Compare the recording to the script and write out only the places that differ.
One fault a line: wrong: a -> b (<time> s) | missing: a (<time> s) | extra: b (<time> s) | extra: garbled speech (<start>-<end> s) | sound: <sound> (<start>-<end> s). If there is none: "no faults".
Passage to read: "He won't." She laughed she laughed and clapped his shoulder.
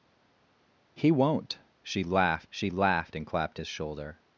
no faults